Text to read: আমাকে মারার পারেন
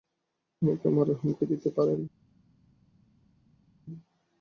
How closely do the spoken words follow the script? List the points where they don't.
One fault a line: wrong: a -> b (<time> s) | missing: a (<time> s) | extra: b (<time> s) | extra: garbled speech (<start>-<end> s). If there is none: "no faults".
extra: হুমকি দিতে (1.2 s)